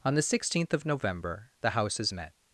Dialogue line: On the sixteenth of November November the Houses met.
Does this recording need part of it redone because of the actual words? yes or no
yes